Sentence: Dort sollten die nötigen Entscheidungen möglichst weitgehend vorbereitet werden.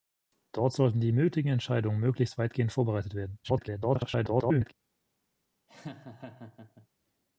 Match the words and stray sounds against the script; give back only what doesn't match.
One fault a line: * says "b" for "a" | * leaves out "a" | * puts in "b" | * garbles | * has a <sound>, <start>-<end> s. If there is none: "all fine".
* garbles
* has a laugh, 5.7-6.9 s